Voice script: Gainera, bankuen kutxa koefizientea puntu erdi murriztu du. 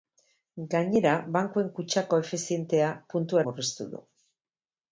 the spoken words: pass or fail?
fail